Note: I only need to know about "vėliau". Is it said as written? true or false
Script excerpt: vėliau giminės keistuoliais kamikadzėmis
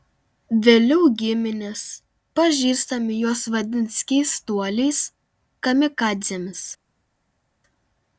true